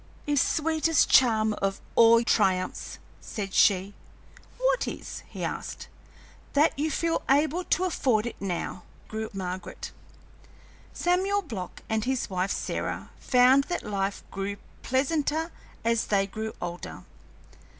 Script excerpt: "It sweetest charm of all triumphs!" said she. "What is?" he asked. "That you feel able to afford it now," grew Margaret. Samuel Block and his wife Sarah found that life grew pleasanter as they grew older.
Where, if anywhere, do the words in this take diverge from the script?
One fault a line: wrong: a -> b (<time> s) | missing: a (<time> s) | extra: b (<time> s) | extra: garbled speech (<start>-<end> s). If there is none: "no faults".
no faults